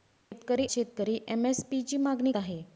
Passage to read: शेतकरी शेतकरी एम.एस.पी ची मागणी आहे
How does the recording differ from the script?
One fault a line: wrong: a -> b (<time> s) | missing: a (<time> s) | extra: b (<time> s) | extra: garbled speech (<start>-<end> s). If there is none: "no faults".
no faults